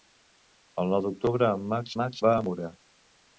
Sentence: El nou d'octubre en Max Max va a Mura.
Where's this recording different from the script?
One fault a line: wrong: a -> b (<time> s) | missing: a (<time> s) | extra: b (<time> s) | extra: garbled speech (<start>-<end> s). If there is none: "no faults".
no faults